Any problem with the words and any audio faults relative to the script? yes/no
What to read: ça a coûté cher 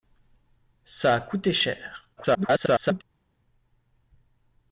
yes